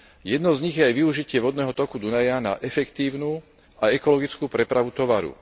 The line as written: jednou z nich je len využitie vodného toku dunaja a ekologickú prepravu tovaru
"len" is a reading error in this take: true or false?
true